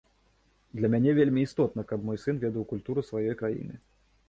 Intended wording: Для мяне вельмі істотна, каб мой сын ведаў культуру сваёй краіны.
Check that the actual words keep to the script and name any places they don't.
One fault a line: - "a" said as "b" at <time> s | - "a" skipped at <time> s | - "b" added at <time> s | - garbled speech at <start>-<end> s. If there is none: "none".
none